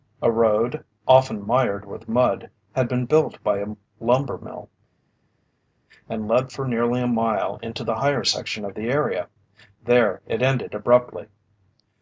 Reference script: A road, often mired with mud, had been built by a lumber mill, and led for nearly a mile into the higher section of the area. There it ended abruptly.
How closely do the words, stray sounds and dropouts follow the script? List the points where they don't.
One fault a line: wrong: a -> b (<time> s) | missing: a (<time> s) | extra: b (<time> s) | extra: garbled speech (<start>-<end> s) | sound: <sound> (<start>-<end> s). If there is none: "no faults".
no faults